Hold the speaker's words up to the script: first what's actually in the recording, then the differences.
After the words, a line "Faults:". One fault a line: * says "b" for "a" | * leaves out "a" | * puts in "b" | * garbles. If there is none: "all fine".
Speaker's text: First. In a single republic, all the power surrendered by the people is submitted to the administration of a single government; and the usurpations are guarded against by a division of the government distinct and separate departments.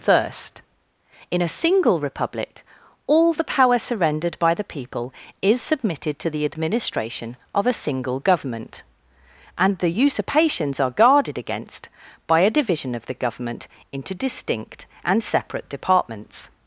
First. In a single republic, all the power surrendered by the people is submitted to the administration of a single government; and the usurpations are guarded against by a division of the government into distinct and separate departments.
Faults:
* puts in "into"